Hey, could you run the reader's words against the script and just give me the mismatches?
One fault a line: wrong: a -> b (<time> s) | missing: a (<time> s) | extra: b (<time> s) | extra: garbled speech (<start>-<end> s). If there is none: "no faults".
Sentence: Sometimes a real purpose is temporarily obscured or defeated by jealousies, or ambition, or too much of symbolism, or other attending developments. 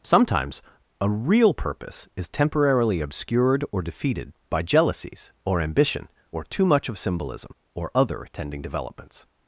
no faults